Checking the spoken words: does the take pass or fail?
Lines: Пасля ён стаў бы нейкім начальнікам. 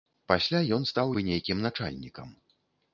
pass